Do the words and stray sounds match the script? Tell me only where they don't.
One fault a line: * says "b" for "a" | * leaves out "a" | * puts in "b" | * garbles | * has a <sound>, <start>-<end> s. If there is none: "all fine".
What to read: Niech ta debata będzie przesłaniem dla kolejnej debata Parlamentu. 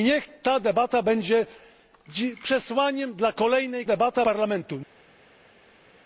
all fine